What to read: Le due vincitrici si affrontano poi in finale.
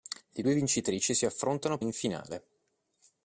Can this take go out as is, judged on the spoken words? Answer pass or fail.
fail